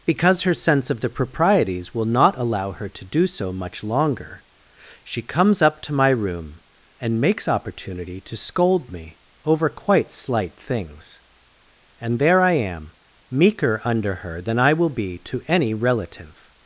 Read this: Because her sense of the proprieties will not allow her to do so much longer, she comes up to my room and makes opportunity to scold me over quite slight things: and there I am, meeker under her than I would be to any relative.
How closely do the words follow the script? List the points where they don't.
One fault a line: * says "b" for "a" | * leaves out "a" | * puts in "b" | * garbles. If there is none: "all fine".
* says "will" for "would"